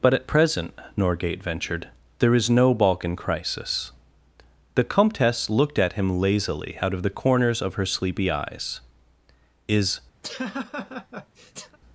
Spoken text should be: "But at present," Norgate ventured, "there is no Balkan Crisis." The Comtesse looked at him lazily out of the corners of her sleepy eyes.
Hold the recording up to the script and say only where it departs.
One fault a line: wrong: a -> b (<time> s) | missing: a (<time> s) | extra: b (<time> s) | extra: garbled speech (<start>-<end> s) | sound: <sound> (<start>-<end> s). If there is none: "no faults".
extra: Is (9.7 s)
sound: laugh (10.2-11.8 s)